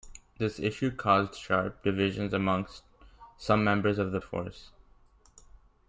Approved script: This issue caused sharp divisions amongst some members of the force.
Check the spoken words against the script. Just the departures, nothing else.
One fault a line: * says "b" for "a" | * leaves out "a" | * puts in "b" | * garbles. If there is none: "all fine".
all fine